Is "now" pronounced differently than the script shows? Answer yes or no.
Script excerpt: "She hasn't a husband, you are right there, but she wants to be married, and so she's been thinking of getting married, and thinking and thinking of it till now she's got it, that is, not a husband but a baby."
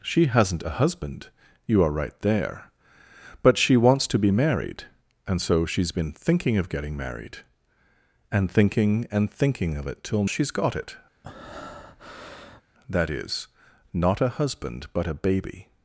yes